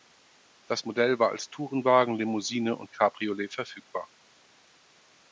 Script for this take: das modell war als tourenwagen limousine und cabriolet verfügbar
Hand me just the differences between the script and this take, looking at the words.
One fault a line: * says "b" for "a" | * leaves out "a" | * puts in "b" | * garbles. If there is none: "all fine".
all fine